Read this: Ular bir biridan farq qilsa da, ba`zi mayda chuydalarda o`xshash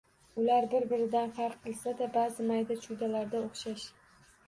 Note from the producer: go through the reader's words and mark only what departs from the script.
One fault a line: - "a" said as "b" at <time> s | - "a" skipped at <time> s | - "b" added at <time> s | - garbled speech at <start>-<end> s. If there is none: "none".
none